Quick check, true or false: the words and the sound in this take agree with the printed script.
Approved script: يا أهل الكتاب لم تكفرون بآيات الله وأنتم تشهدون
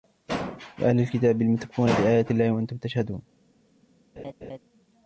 false